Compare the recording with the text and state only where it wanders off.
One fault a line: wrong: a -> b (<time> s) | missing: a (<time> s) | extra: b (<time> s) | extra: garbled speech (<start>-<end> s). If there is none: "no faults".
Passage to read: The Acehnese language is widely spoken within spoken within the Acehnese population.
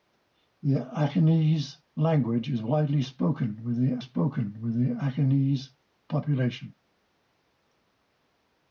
no faults